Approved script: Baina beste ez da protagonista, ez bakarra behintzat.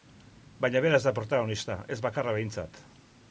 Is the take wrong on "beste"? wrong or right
wrong